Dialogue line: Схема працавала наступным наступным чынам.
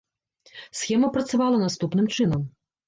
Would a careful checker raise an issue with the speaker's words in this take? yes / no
yes